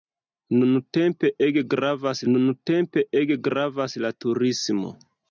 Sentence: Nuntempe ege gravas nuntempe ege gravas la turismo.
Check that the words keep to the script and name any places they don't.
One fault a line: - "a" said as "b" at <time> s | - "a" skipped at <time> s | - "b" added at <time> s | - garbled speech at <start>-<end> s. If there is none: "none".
none